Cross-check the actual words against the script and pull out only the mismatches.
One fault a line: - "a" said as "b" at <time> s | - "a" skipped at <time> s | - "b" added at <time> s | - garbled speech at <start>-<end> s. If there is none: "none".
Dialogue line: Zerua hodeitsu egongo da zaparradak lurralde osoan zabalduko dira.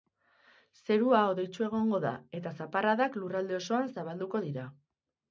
- "eta" added at 2.4 s